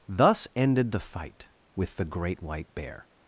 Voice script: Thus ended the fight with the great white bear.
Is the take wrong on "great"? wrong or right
right